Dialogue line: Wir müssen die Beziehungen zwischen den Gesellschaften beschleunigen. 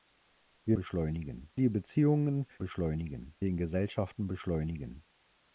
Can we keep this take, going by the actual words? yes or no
no